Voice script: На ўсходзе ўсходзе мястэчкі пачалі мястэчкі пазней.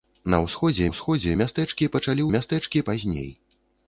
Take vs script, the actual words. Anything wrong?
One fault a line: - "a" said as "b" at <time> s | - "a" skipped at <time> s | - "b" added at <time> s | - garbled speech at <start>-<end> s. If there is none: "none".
none